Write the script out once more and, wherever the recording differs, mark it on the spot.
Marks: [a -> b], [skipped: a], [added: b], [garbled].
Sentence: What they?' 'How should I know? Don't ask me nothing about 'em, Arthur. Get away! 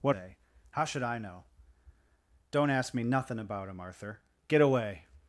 What they?' 'How should I know? Don't ask me nothing about 'em, Arthur. Get away!